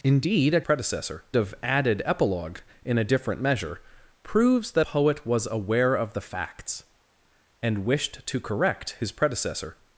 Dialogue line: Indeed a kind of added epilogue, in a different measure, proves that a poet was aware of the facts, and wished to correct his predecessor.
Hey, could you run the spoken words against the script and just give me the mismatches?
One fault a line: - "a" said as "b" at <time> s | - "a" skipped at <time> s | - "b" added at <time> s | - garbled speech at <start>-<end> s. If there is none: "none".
- "kind" said as "predecessor" at 0.6 s
- "a" skipped at 4.9 s